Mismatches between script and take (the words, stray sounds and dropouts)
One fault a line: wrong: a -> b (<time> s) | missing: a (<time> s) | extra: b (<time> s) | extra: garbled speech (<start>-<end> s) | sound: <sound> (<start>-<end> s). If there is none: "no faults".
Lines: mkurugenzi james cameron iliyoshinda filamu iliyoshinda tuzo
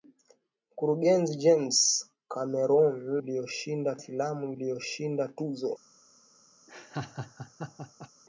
sound: laugh (6.7-8.1 s)